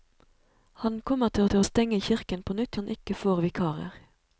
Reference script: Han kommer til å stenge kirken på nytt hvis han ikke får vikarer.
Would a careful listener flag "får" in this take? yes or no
no